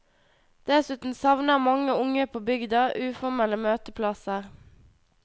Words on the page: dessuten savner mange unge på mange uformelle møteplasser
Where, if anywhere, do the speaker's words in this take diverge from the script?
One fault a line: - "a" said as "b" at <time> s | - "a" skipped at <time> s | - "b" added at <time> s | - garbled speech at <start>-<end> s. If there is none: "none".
- "mange" said as "bygda" at 2.5 s